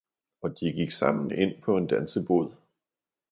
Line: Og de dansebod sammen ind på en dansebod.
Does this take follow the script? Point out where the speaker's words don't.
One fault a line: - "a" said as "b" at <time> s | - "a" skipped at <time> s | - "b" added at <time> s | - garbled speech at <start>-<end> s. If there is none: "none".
- "dansebod" said as "gik" at 0.7 s